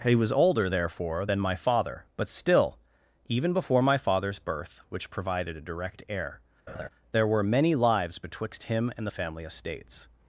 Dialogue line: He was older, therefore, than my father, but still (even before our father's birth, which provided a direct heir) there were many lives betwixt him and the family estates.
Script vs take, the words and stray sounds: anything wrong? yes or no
yes